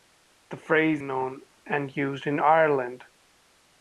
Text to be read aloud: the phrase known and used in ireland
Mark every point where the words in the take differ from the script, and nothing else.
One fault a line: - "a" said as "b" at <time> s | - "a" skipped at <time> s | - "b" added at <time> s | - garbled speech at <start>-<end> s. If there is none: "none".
none